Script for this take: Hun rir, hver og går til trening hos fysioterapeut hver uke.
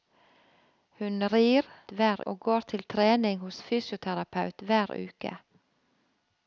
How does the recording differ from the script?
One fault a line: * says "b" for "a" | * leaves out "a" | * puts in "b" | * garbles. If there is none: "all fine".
all fine